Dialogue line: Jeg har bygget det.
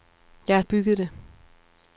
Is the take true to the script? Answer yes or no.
yes